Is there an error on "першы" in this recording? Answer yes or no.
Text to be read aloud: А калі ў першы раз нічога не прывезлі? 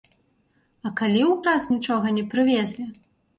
yes